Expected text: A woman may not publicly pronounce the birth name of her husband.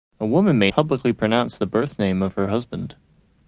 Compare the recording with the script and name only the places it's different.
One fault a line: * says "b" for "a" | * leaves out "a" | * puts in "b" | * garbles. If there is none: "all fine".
* leaves out "not"